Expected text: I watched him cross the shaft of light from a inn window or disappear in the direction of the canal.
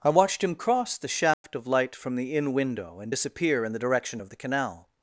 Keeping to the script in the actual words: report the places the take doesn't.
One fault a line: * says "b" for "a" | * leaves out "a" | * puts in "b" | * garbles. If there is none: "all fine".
* says "the" for "a"
* says "and" for "or"